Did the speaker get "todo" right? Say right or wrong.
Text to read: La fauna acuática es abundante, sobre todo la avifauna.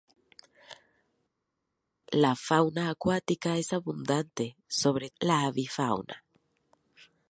wrong